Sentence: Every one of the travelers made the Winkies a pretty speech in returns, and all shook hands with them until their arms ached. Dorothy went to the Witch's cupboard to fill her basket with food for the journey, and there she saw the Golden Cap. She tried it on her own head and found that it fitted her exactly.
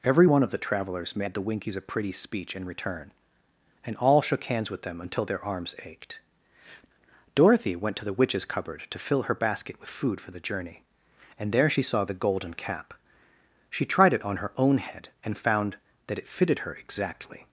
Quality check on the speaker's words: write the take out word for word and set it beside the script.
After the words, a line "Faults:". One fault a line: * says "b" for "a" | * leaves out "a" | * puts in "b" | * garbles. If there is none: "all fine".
Every one of the travelers made the Winkies a pretty speech in return, and all shook hands with them until their arms ached. Dorothy went to the Witch's cupboard to fill her basket with food for the journey, and there she saw the Golden Cap. She tried it on her own head and found that it fitted her exactly.
Faults:
* says "return" for "returns"